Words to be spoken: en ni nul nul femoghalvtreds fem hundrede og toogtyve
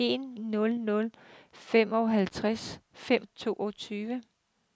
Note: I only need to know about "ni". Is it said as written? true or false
false